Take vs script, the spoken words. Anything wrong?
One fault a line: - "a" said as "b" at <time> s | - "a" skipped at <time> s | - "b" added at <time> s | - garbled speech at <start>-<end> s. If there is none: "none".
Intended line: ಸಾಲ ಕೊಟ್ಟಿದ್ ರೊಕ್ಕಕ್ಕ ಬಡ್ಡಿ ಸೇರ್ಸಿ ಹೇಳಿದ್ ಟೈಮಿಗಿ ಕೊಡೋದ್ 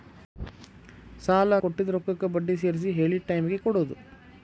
none